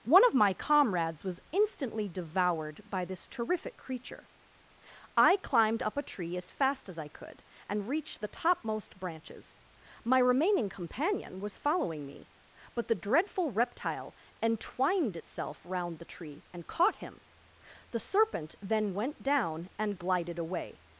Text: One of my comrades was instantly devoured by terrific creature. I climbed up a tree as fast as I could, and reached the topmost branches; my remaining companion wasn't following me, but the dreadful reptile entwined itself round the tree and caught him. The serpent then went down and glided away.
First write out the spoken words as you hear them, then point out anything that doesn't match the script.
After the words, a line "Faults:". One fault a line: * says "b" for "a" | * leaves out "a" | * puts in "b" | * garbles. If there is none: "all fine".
One of my comrades was instantly devoured by this terrific creature. I climbed up a tree as fast as I could, and reached the topmost branches; my remaining companion was following me, but the dreadful reptile entwined itself round the tree and caught him. The serpent then went down and glided away.
Faults:
* puts in "this"
* says "was" for "wasn't"